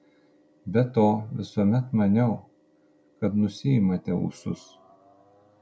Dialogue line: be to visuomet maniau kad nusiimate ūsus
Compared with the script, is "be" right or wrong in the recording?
right